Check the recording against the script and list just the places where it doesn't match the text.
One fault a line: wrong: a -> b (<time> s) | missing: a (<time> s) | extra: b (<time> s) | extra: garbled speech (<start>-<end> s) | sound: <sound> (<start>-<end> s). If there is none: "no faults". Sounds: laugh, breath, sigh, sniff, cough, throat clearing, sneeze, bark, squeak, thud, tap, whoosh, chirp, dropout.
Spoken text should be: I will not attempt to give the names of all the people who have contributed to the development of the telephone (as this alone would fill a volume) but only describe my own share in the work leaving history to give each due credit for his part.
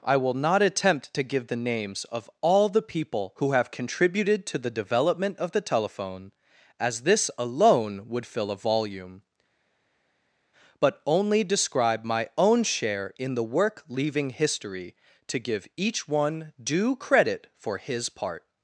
extra: one (16.1 s)